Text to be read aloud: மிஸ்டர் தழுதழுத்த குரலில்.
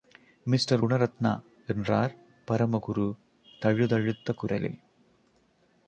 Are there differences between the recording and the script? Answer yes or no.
yes